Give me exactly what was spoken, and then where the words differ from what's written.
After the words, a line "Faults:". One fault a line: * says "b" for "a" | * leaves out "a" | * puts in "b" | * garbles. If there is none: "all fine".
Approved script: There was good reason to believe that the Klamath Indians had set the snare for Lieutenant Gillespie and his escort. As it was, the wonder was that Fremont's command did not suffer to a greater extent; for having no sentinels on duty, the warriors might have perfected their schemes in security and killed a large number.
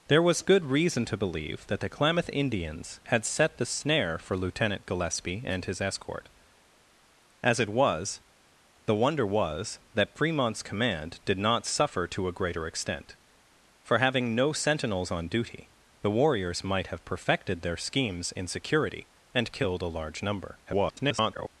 There was good reason to believe that the Klamath Indians had set the snare for Lieutenant Gillespie and his escort. As it was, the wonder was that Fremont's command did not suffer to a greater extent; for having no sentinels on duty, the warriors might have perfected their schemes in security and killed a large number. [garbled]
Faults:
* garbles